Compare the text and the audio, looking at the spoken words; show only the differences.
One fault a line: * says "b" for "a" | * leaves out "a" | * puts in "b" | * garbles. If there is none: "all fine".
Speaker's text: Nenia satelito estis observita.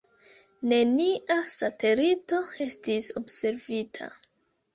all fine